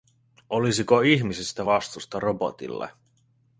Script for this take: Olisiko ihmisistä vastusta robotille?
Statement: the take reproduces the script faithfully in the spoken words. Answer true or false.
true